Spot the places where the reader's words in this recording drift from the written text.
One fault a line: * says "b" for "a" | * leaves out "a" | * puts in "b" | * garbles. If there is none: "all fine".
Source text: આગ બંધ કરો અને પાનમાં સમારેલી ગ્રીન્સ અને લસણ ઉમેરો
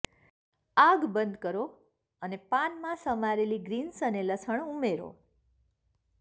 all fine